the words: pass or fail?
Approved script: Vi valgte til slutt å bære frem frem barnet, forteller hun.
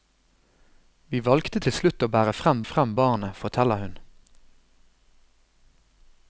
pass